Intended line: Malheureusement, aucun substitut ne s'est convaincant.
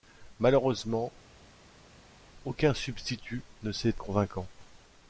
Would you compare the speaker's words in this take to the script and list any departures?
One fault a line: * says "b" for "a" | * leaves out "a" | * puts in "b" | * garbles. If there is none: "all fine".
all fine